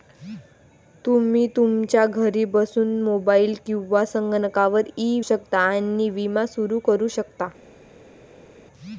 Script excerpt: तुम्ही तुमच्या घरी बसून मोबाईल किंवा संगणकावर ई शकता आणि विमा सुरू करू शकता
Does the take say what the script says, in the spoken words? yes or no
yes